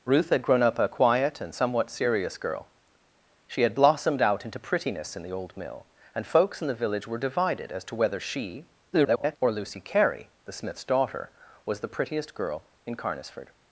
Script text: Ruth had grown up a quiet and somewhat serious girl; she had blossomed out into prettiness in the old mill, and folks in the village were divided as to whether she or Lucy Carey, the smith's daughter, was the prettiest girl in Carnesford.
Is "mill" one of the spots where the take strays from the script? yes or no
no